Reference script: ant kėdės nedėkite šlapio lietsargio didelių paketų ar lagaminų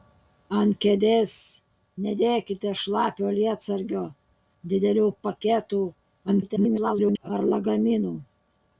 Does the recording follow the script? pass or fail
fail